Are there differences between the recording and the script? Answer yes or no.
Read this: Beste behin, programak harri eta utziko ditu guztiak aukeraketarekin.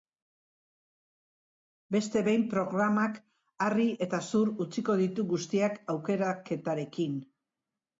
yes